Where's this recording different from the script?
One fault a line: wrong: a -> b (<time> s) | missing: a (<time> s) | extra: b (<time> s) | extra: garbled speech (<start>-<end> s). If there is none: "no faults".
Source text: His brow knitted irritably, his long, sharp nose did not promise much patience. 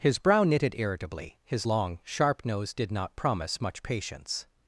no faults